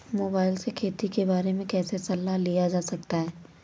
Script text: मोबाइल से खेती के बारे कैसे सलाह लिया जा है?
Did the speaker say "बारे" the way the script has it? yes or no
yes